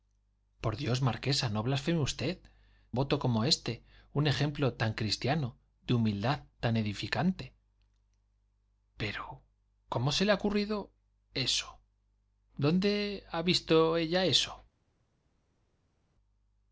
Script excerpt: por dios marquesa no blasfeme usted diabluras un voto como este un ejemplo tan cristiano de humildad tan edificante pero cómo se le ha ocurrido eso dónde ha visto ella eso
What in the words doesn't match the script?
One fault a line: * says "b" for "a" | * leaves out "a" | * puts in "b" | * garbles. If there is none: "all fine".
* leaves out "diabluras un"